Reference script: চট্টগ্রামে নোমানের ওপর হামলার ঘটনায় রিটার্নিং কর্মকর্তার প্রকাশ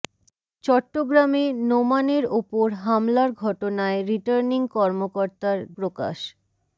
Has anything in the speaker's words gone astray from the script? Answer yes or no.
no